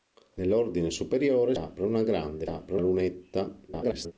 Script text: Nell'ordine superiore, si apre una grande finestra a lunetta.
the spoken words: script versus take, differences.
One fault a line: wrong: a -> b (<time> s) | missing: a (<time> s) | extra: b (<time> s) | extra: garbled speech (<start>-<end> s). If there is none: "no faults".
missing: si (1.5 s)
wrong: finestra -> apre (2.4 s)
extra: garbled speech (3.7-4.1 s)